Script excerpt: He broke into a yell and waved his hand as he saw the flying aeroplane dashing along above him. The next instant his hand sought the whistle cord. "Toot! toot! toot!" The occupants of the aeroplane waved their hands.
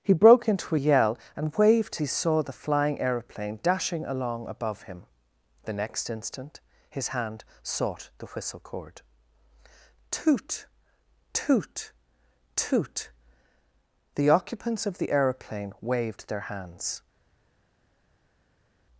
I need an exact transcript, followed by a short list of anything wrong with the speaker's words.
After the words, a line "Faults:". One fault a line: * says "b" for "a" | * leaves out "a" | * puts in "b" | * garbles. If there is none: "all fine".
He broke into a yell and waved he saw the flying aeroplane dashing along above him. The next instant his hand sought the whistle cord. "Toot! toot! toot!" The occupants of the aeroplane waved their hands.
Faults:
* leaves out "his hand as"